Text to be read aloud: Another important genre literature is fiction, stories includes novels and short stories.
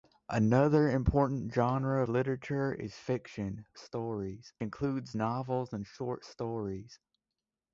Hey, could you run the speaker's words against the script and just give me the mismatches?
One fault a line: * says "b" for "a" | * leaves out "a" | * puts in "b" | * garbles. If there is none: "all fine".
all fine